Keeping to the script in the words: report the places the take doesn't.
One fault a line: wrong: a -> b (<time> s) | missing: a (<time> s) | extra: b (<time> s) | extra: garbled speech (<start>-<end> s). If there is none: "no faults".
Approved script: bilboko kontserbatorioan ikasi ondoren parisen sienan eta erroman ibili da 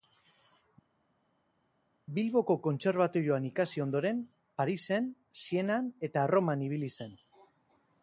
wrong: da -> zen (7.0 s)